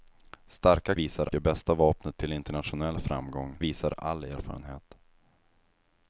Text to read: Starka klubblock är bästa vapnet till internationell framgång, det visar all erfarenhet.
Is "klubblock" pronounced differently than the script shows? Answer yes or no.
yes